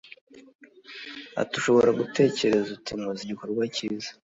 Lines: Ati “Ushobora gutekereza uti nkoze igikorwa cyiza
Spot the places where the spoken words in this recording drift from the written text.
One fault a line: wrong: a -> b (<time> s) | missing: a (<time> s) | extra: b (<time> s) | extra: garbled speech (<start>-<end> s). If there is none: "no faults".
no faults